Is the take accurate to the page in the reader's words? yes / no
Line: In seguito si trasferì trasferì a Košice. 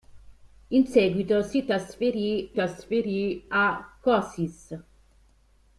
yes